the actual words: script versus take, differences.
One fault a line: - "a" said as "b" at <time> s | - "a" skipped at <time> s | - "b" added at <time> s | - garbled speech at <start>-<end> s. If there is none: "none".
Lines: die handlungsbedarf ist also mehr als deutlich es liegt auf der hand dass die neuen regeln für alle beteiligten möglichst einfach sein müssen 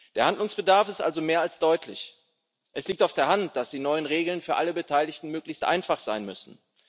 - "die" said as "der" at 0.1 s